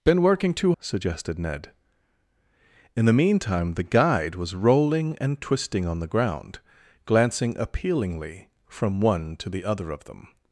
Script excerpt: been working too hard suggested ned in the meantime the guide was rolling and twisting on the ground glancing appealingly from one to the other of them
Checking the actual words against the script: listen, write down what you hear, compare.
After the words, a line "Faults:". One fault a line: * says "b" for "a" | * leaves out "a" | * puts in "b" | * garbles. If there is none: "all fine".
been working too suggested ned in the meantime the guide was rolling and twisting on the ground glancing appealingly from one to the other of them
Faults:
* leaves out "hard"